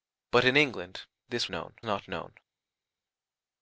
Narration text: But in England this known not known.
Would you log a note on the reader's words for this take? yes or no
no